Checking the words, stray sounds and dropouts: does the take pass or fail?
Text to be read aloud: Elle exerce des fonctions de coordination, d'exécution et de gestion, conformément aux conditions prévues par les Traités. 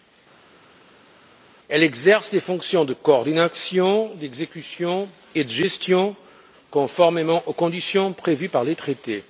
pass